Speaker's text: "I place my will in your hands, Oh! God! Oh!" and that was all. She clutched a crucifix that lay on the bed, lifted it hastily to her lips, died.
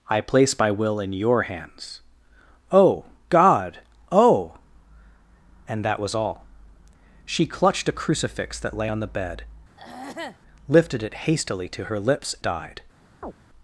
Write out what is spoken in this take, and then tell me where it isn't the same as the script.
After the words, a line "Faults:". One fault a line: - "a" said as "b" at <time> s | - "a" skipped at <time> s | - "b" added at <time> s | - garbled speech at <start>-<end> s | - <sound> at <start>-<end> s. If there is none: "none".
"I place my will in your hands, Oh! God! Oh!" and that was all. She clutched a crucifix that lay on the bed, lifted it hastily to her lips, died.
Faults:
- throat clearing at 9.8-10.4 s
- chirp at 13.2-13.3 s